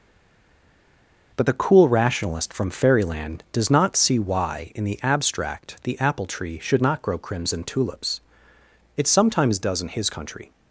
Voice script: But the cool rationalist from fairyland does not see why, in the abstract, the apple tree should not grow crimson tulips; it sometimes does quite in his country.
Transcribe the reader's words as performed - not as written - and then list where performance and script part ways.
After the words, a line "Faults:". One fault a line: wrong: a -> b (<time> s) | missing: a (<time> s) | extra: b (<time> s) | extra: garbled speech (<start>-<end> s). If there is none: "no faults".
But the cool rationalist from fairyland does not see why, in the abstract, the apple tree should not grow crimson tulips; it sometimes does in his country.
Faults:
missing: quite (9.8 s)